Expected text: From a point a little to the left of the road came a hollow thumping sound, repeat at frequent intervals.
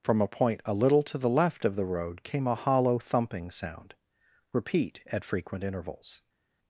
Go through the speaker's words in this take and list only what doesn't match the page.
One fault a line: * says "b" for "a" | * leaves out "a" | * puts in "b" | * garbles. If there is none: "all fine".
all fine